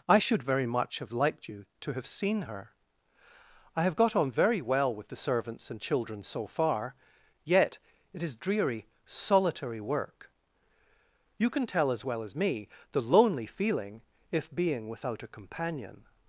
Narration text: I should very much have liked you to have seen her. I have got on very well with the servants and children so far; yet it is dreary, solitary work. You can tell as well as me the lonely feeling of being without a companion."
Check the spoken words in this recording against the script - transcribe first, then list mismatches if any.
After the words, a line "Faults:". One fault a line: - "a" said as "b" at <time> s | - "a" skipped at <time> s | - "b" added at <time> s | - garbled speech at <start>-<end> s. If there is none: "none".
I should very much have liked you to have seen her. I have got on very well with the servants and children so far; yet it is dreary, solitary work. You can tell as well as me the lonely feeling if being without a companion."
Faults:
- "of" said as "if" at 14.3 s